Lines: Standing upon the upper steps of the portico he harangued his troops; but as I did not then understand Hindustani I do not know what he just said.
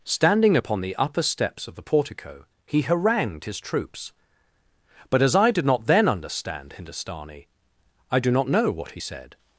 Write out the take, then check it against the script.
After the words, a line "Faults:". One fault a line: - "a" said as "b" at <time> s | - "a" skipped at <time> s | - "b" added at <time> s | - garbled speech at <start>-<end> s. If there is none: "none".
Standing upon the upper steps of the portico he harangued his troops; but as I did not then understand Hindustani I do not know what he said.
Faults:
- "just" skipped at 9.0 s